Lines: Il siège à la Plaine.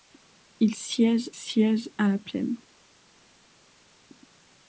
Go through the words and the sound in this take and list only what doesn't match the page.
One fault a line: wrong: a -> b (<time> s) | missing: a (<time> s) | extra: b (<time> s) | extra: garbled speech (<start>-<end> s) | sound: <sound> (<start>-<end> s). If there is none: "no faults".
extra: siège (1.3 s)